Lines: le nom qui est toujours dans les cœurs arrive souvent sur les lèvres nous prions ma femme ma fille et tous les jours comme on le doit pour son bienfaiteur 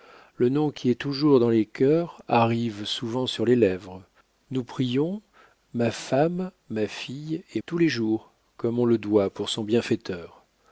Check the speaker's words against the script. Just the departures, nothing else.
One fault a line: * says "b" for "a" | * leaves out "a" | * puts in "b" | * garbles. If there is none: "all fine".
all fine